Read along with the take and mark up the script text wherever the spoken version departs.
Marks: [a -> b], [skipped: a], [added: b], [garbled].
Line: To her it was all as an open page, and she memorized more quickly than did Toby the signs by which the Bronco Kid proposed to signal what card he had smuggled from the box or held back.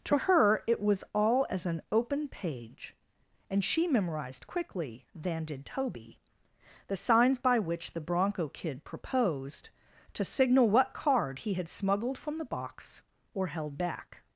To her it was all as an open page, and she memorized [skipped: more] quickly than did Toby the signs by which the Bronco Kid proposed to signal what card he had smuggled from the box or held back.